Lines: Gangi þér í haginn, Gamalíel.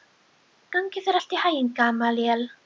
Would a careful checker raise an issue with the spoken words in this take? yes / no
yes